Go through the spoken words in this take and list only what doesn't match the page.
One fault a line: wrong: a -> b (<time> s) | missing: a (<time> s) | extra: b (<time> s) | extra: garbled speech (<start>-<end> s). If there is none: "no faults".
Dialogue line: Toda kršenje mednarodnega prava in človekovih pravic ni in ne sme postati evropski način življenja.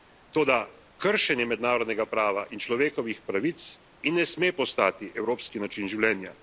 missing: ni (3.6 s)